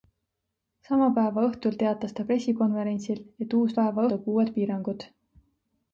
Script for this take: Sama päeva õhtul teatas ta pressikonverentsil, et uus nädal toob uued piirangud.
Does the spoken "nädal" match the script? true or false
false